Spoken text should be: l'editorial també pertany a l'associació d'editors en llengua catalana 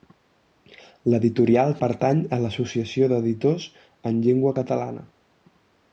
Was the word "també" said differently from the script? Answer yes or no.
yes